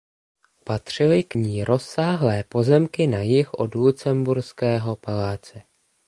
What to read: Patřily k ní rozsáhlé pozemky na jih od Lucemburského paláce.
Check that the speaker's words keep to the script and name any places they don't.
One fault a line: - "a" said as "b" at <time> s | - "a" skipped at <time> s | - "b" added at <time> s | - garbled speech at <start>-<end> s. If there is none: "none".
none